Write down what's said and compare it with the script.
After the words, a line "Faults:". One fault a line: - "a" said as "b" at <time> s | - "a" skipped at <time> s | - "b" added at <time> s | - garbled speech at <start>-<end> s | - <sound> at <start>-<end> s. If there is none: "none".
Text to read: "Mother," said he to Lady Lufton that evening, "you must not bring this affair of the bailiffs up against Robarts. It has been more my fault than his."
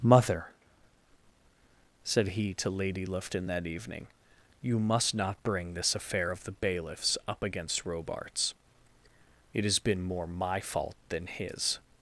"Mother," said he to Lady Lufton that evening, "you must not bring this affair of the bailiffs up against Robarts. It has been more my fault than his."
Faults:
none